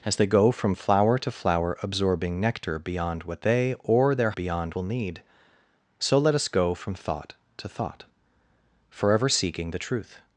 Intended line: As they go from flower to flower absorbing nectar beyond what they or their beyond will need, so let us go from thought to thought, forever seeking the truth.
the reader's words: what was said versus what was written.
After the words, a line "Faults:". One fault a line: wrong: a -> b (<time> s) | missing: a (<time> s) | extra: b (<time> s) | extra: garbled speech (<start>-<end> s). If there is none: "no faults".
As they go from flower to flower absorbing nectar beyond what they or their beyond will need, so let us go from thought to thought, forever seeking the truth.
Faults:
no faults